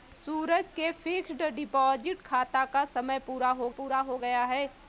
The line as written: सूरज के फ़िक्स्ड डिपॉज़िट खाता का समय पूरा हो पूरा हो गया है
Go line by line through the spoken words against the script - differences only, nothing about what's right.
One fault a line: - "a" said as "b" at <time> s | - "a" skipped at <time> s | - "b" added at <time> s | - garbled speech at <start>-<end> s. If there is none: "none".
none